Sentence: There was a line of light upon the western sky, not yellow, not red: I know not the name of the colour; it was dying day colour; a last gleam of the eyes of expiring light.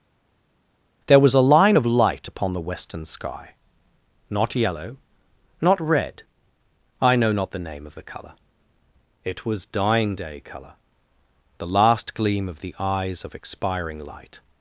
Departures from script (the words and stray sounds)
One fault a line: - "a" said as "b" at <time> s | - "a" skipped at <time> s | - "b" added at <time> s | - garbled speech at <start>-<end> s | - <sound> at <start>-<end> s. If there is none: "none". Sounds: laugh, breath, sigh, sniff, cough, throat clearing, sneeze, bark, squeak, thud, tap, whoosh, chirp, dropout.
- "a" said as "the" at 11.6 s